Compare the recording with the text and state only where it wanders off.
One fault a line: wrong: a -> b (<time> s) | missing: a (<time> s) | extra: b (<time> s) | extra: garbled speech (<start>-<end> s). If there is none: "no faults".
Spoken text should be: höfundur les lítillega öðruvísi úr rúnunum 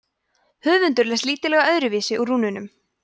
no faults